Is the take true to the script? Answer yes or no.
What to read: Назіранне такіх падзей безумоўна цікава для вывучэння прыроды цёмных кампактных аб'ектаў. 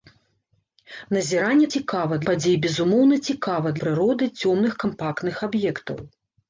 no